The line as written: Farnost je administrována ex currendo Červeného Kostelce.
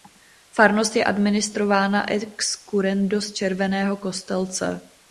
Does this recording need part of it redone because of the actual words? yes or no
yes